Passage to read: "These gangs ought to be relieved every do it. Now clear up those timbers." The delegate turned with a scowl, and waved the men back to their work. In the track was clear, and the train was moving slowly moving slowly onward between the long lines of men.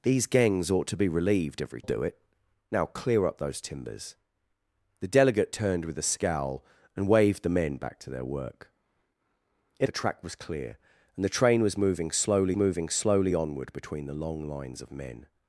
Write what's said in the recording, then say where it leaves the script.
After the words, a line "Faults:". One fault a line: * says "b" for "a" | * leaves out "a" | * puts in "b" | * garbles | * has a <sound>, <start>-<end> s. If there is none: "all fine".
"These gangs ought to be relieved every do it. Now clear up those timbers." The delegate turned with a scowl, and waved the men back to their work. In the track was clear, and the train was moving slowly moving slowly onward between the long lines of men.
Faults:
all fine